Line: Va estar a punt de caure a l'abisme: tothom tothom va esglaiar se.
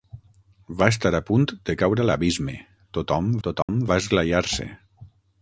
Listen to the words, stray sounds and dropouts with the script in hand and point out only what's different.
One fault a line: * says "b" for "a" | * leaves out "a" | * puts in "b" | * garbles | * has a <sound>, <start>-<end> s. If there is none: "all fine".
* has a dropout, 3.6-3.7 s